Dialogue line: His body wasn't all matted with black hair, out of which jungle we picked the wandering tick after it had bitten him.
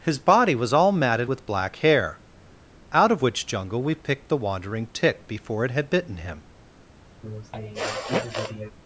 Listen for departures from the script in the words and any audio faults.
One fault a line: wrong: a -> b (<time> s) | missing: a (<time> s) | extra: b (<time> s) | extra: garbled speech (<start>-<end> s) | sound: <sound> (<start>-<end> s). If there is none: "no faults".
wrong: wasn't -> was (0.6 s)
wrong: after -> before (5.3 s)
sound: sniff (7.2-8.7 s)